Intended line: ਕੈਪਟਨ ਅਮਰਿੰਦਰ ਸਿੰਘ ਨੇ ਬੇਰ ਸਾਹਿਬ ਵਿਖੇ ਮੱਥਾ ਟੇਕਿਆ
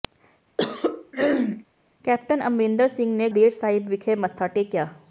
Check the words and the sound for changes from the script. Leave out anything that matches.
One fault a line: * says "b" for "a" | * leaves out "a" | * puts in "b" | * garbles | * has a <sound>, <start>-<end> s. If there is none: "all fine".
* has a throat clearing, 0.6-1.6 s